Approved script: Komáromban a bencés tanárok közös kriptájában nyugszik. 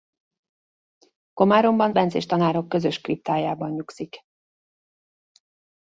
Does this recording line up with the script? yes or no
no